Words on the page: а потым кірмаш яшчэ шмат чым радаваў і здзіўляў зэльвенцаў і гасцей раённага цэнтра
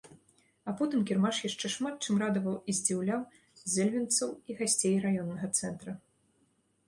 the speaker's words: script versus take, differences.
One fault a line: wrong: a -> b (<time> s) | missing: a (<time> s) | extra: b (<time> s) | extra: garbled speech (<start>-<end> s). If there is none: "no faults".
no faults